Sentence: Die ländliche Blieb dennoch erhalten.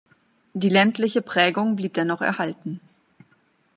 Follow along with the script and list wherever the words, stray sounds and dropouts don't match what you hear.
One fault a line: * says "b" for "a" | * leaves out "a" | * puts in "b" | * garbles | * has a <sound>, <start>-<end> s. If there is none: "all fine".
* puts in "Prägung"